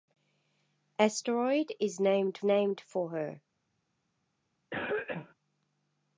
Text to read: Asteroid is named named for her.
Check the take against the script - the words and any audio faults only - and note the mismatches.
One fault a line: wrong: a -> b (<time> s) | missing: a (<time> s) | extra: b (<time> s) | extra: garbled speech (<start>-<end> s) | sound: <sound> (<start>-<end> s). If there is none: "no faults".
sound: cough (4.7-5.3 s)